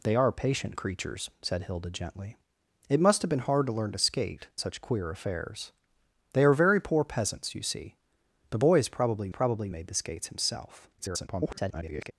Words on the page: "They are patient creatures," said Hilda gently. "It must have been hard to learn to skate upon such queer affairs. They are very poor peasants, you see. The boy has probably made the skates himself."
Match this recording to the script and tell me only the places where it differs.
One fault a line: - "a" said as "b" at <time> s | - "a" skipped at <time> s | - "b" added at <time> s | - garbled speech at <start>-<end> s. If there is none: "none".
- "upon" skipped at 4.5 s
- "probably" added at 9.3 s
- garbled speech at 11.0-12.1 s